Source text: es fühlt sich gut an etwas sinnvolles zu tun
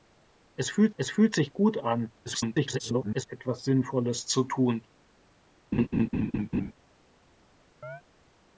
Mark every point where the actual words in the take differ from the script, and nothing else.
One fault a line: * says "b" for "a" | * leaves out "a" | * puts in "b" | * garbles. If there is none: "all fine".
* puts in "es fühlt"
* garbles